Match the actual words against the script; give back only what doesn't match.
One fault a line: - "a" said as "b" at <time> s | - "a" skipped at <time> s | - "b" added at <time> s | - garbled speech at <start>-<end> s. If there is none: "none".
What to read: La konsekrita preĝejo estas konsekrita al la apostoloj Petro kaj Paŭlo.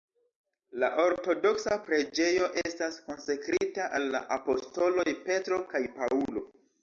- "konsekrita" said as "ortodoksa" at 1.0 s